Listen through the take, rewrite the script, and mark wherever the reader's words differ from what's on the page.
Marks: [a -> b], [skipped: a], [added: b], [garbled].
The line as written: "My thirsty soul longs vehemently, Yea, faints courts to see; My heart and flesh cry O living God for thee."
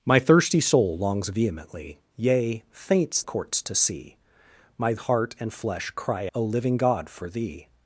"My thirsty soul longs vehemently, Yea, faints courts to see; My heart and flesh cry O living God for thee."